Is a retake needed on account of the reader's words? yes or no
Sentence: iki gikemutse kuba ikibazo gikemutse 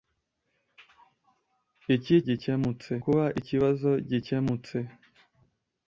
no